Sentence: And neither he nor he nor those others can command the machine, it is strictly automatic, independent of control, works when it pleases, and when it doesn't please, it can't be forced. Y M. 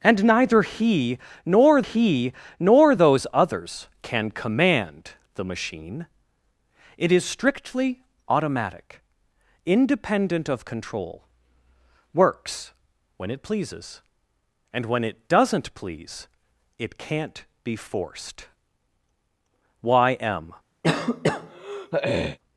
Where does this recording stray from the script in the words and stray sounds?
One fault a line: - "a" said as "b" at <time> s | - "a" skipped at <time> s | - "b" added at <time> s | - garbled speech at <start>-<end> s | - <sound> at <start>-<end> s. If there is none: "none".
- throat clearing at 20.8-22.4 s